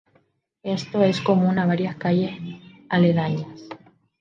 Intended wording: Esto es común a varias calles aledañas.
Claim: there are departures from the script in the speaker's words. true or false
false